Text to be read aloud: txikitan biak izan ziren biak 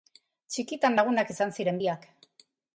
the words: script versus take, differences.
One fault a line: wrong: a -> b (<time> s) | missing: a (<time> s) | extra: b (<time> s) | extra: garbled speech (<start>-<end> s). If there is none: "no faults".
wrong: biak -> lagunak (1.0 s)